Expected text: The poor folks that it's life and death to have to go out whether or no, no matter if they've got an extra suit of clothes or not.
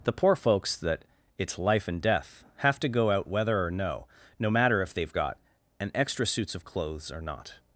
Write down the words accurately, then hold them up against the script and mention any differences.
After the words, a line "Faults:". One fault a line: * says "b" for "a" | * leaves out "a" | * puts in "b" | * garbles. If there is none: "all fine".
The poor folks that it's life and death have to go out whether or no, no matter if they've got an extra suits of clothes or not.
Faults:
* leaves out "to"
* says "suits" for "suit"